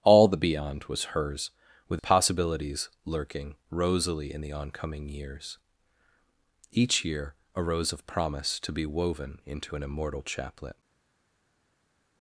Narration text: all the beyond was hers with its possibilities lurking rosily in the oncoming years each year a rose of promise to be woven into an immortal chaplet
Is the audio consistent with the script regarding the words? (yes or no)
no